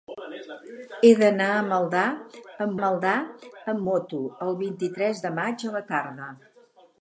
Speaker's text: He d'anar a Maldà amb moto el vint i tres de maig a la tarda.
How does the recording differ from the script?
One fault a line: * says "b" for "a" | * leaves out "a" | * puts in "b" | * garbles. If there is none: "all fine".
* puts in "Maldà amb"